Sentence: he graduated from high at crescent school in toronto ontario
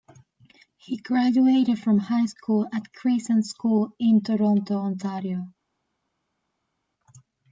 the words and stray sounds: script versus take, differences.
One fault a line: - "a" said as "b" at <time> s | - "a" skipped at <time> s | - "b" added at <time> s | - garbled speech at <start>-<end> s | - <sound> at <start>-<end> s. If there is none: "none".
- "school" added at 2.2 s